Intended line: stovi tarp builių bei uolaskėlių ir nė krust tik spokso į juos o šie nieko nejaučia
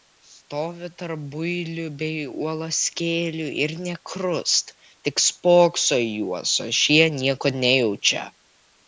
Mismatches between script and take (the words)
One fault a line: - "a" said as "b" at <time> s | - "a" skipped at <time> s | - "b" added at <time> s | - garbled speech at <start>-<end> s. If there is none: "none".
none